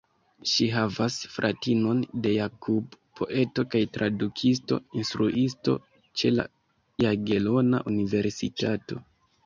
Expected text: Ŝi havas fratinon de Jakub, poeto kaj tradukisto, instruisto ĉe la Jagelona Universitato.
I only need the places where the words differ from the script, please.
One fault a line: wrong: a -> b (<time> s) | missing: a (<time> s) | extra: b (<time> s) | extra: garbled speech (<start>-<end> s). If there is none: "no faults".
no faults